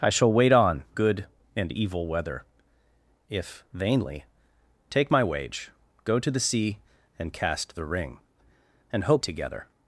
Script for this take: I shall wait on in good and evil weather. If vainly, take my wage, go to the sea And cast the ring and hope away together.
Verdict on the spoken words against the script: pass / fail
fail